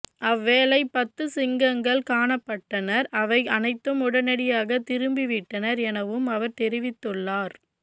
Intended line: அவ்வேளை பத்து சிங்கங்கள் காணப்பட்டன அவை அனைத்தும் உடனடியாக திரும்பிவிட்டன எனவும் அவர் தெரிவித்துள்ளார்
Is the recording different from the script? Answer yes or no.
no